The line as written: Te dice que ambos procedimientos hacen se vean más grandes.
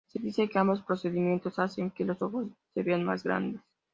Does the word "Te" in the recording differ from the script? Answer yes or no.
yes